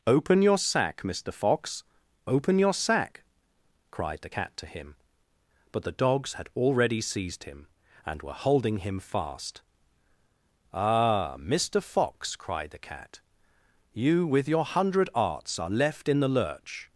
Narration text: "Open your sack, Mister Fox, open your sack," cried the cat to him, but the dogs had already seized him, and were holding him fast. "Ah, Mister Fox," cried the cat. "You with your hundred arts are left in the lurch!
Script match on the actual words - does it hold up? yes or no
yes